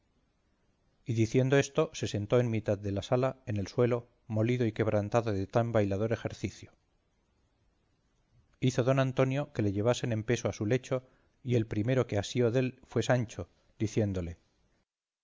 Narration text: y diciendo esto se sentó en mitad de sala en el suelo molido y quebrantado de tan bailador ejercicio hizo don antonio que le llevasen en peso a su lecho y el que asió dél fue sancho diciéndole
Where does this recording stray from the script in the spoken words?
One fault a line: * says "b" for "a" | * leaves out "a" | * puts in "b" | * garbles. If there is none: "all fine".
* puts in "la"
* puts in "primero"